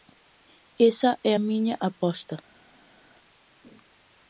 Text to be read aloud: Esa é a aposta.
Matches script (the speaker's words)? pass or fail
fail